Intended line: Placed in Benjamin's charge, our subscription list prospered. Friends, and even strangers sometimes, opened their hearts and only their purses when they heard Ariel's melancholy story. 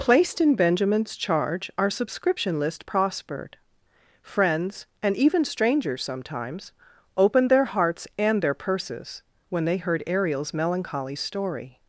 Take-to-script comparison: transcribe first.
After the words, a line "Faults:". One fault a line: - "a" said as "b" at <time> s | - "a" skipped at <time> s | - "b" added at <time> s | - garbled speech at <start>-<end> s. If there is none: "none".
Placed in Benjamin's charge, our subscription list prospered. Friends, and even strangers sometimes, opened their hearts and their purses when they heard Ariel's melancholy story.
Faults:
- "only" skipped at 8.4 s